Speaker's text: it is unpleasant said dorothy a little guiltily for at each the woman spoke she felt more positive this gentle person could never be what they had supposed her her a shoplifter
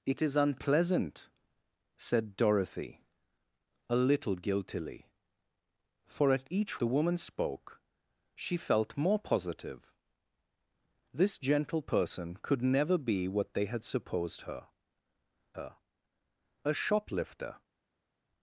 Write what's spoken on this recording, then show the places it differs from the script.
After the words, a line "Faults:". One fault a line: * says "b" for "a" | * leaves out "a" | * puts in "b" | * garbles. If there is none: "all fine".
it is unpleasant said dorothy a little guiltily for at each the woman spoke she felt more positive this gentle person could never be what they had supposed her her a shoplifter
Faults:
all fine